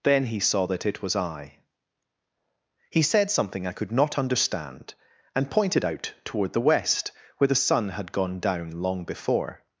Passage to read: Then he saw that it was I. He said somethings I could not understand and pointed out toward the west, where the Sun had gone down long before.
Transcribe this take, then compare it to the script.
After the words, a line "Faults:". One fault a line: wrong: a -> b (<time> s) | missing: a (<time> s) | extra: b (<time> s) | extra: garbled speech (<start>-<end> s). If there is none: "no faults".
Then he saw that it was I. He said something I could not understand and pointed out toward the west, where the Sun had gone down long before.
Faults:
wrong: somethings -> something (3.3 s)